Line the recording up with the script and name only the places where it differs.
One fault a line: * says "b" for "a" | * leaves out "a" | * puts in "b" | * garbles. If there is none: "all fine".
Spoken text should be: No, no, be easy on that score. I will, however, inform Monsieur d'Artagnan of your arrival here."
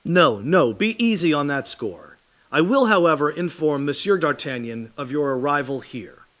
all fine